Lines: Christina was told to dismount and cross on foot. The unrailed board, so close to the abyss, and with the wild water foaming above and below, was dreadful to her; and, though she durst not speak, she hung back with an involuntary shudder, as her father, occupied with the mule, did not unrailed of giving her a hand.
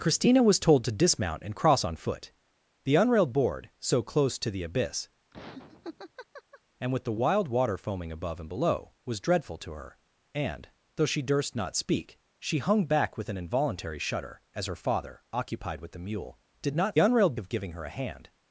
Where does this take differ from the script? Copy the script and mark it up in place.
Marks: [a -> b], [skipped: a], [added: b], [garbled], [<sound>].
Christina was told to dismount and cross on foot. The unrailed board, so close to the abyss, [laugh] and with the wild water foaming above and below, was dreadful to her; and, though she durst not speak, she hung back with an involuntary shudder, as her father, occupied with the mule, did not unrailed of giving her a hand.